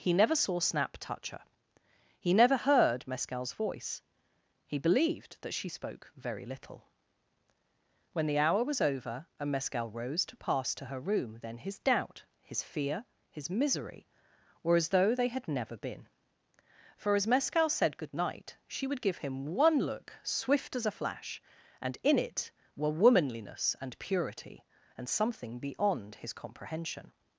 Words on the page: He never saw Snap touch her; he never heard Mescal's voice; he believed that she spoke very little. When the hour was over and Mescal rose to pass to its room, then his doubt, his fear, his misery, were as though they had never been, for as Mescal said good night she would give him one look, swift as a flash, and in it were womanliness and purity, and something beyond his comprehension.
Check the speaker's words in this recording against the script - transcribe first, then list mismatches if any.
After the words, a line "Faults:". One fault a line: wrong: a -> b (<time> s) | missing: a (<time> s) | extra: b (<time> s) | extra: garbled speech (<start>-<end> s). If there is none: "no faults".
He never saw Snap touch her; he never heard Mescal's voice; he believed that she spoke very little. When the hour was over and Mescal rose to pass to her room, then his doubt, his fear, his misery, were as though they had never been, for as Mescal said good night she would give him one look, swift as a flash, and in it were womanliness and purity, and something beyond his comprehension.
Faults:
wrong: its -> her (10.9 s)